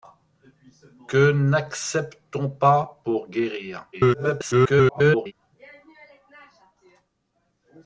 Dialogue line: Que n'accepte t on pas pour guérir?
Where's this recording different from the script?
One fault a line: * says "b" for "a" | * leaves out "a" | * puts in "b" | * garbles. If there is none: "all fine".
* garbles